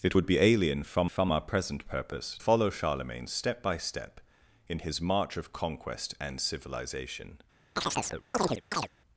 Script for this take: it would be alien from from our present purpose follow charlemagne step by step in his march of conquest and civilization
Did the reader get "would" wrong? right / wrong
right